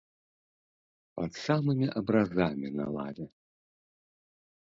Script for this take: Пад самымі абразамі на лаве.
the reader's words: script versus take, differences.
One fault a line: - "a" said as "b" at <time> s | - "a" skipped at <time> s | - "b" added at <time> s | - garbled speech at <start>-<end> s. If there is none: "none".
none